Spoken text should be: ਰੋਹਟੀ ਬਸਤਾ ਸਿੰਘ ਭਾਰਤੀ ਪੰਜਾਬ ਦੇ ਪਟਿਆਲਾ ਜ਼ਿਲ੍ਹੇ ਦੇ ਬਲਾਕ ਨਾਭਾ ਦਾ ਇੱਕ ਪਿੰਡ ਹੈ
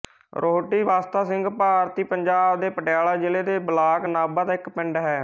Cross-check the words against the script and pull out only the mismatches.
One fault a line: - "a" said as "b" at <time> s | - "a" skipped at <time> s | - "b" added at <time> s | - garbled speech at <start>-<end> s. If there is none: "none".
none